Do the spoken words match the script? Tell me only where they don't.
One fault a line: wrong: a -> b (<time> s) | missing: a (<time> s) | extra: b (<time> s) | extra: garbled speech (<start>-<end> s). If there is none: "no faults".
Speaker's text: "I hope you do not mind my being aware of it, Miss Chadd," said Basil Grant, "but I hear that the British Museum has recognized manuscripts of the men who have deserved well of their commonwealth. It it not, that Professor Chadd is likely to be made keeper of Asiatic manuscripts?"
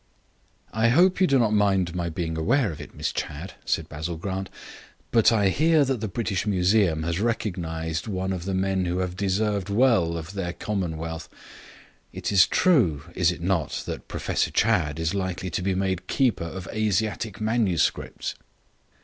wrong: manuscripts -> one (8.1 s)
extra: is true is (12.3 s)